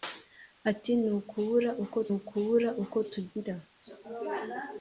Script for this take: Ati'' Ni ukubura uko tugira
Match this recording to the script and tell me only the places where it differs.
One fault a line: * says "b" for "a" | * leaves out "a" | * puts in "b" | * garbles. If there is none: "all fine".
* puts in "ukubura uko"